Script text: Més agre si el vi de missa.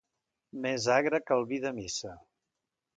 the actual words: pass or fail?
fail